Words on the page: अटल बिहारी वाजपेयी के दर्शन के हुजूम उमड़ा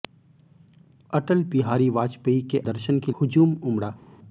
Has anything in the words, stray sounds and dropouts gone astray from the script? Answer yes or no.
no